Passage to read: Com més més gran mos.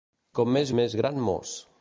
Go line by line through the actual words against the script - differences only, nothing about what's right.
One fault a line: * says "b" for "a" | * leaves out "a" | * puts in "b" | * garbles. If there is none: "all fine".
all fine